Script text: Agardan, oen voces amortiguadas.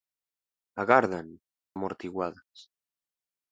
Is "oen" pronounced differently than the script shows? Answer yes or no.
yes